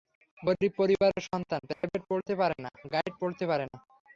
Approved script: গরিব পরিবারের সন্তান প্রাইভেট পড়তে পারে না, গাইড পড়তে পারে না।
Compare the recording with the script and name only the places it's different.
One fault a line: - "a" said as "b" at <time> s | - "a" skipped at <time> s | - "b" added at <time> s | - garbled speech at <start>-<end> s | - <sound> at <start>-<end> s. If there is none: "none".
- dropout at 1.7-1.8 s